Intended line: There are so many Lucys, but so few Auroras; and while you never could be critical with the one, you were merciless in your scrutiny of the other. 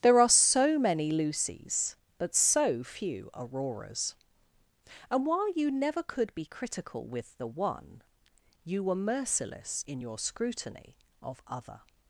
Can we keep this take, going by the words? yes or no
no